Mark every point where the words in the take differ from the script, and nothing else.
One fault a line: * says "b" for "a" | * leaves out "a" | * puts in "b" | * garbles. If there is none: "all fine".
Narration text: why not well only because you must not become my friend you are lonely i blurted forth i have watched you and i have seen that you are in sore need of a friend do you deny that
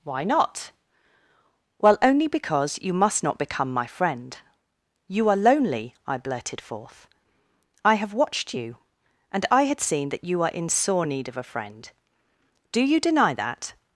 * says "had" for "have"